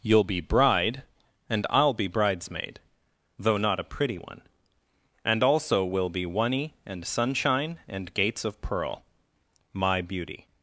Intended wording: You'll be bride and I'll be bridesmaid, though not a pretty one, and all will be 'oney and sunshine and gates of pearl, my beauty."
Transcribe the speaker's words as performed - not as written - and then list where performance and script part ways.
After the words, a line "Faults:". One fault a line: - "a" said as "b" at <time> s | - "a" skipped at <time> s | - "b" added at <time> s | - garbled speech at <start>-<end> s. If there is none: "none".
You'll be bride and I'll be bridesmaid, though not a pretty one, and also will be 'oney and sunshine and gates of pearl, my beauty."
Faults:
- "all" said as "also" at 5.4 s